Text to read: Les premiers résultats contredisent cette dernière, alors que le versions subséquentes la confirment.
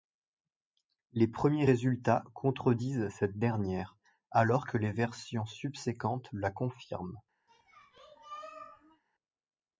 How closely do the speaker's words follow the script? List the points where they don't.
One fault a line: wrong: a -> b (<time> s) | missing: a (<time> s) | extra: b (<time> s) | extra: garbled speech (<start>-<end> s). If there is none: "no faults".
wrong: le -> les (4.8 s)